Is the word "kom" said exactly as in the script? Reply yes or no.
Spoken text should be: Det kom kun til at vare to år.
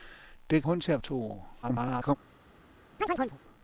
no